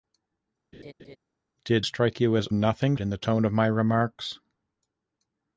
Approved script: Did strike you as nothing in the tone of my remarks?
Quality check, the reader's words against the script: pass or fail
pass